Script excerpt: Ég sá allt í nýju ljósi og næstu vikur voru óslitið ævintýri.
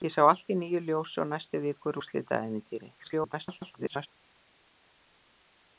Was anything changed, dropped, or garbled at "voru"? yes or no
yes